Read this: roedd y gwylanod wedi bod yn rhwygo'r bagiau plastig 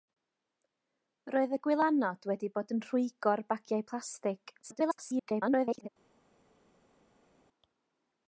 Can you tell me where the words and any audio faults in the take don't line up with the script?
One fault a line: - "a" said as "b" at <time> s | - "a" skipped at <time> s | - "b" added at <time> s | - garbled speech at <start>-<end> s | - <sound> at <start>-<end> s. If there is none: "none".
- garbled speech at 4.6-5.9 s